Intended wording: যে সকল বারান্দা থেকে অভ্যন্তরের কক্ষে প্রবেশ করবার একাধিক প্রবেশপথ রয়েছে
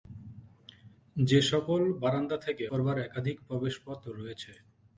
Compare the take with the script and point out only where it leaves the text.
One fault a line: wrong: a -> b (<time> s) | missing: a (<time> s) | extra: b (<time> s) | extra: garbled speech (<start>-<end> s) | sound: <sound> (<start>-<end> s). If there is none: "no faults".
missing: অভ্যন্তরের কক্ষে প্রবেশ (2.6 s)